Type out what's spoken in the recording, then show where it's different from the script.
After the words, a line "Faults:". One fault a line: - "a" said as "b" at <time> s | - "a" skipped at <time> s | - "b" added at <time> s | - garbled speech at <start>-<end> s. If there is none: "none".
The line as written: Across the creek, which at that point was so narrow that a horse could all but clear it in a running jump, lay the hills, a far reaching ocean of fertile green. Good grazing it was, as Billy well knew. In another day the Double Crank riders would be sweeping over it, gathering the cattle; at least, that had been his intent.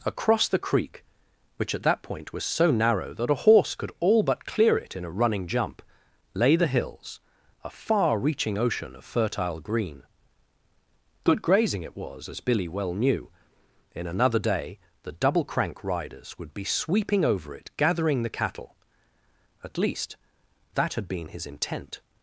Across the creek, which at that point was so narrow that a horse could all but clear it in a running jump, lay the hills, a far reaching ocean of fertile green. Good grazing it was, as Billy well knew. In another day the Double Crank riders would be sweeping over it, gathering the cattle; at least, that had been his intent.
Faults:
none